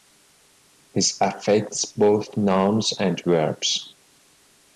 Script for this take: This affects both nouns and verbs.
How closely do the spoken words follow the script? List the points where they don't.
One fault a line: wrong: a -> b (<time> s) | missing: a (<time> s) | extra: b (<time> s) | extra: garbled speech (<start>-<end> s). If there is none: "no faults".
no faults